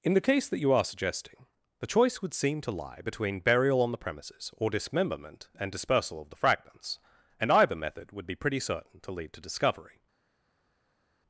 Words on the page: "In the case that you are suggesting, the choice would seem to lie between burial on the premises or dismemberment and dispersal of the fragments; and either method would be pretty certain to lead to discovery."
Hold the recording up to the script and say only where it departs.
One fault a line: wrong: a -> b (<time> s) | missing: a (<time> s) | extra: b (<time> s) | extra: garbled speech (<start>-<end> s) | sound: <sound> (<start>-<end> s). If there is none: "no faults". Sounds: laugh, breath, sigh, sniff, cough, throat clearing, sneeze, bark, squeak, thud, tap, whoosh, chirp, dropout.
no faults